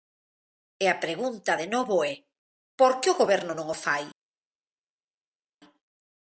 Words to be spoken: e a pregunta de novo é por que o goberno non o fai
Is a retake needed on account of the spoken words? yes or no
no